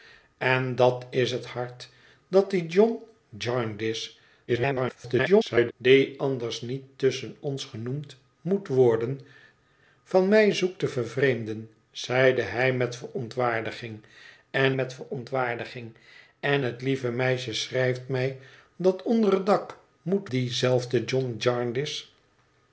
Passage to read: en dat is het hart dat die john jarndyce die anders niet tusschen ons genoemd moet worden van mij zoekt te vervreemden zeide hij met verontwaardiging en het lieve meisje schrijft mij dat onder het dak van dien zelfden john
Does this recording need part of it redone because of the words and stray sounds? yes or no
yes